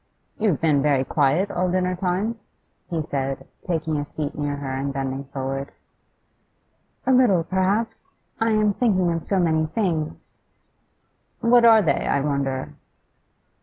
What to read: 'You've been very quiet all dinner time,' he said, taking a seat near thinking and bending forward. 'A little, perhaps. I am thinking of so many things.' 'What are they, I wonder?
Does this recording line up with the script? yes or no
no